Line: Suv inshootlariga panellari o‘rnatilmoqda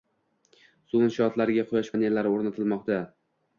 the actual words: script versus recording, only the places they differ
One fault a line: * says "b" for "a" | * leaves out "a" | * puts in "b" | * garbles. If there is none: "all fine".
* puts in "quyosh"